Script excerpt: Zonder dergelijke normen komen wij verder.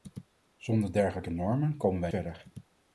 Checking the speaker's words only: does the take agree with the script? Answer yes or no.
yes